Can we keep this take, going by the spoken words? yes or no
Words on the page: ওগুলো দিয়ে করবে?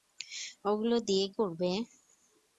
yes